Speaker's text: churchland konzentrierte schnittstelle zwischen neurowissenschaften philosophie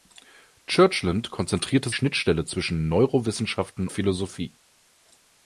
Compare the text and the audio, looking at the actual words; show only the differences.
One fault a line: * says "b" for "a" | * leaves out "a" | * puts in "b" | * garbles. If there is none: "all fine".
all fine